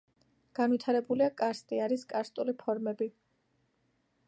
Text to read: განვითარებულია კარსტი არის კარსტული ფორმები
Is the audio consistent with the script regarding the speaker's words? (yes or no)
yes